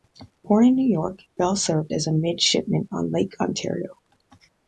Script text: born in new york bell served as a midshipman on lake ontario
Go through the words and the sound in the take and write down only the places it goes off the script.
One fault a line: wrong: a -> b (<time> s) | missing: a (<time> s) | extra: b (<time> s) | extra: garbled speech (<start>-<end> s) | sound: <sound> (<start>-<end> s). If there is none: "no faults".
no faults